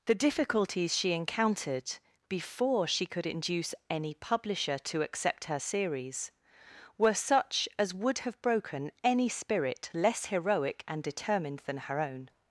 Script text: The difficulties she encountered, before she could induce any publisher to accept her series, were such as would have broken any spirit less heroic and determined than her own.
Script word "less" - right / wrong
right